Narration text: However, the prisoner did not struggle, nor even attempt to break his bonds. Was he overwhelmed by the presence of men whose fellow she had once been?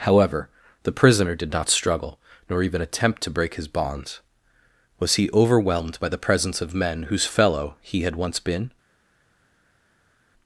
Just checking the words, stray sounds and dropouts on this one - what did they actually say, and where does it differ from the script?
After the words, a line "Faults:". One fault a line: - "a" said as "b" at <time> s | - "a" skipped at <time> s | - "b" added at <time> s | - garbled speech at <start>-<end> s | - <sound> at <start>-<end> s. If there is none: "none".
However, the prisoner did not struggle, nor even attempt to break his bonds. Was he overwhelmed by the presence of men whose fellow he had once been?
Faults:
- "she" said as "he" at 7.8 s